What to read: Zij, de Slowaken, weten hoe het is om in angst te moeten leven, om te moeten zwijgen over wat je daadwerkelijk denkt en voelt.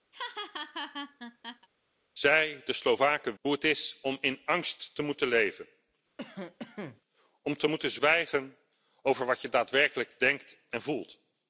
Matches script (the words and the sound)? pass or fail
fail